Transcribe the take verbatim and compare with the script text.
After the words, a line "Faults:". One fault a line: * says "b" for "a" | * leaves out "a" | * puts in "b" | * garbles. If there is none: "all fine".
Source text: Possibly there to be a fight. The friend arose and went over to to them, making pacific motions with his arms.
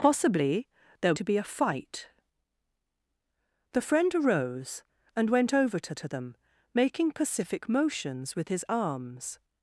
Possibly there to be a fight. The friend arose and went over to to them, making pacific motions with his arms.
Faults:
all fine